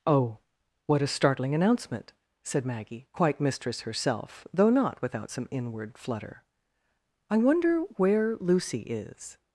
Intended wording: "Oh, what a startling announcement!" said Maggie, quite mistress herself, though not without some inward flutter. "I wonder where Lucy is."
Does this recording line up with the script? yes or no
yes